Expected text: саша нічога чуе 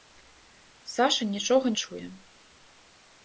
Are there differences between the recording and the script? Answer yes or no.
no